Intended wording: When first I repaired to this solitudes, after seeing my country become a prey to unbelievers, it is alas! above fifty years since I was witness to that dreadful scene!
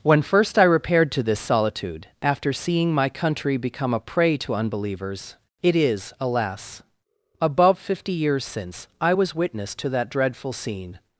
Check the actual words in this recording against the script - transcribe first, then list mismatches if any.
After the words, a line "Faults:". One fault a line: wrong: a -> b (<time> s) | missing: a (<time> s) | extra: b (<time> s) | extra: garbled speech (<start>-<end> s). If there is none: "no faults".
When first I repaired to this solitude, after seeing my country become a prey to unbelievers, it is alas! above fifty years since I was witness to that dreadful scene!
Faults:
wrong: solitudes -> solitude (1.4 s)